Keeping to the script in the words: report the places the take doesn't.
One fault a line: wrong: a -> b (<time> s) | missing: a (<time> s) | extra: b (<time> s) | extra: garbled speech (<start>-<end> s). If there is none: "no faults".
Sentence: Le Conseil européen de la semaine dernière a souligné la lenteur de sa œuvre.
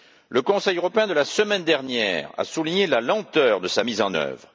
extra: mise en (3.8 s)